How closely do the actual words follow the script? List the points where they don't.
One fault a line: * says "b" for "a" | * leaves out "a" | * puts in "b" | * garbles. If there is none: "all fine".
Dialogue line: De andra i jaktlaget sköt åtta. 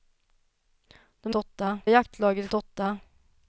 * says "åtta" for "andra"
* leaves out "sköt"